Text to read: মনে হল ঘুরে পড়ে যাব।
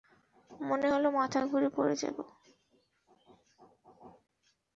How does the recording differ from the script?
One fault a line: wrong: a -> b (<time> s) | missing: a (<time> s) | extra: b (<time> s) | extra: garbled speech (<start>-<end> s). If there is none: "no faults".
extra: মাথা (1.2 s)